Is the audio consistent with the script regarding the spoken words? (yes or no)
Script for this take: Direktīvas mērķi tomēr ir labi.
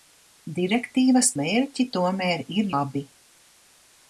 yes